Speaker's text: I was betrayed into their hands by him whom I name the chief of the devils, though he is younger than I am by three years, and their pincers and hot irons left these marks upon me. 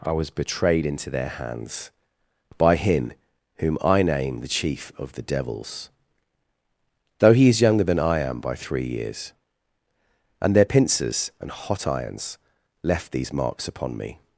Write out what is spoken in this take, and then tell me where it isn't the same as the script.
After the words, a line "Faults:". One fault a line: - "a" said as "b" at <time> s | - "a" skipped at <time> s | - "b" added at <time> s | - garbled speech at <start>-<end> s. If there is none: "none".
I was betrayed into their hands by him whom I name the chief of the devils, though he is younger than I am by three years, and their pincers and hot irons left these marks upon me.
Faults:
none